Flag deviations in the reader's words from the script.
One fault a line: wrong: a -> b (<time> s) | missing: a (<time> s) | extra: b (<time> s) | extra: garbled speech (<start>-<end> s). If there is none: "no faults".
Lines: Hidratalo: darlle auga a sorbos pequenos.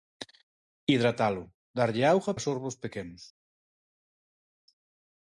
no faults